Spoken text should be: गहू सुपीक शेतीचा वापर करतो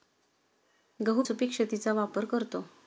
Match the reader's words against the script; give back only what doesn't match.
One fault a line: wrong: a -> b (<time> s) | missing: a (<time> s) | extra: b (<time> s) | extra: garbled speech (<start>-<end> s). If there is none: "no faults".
no faults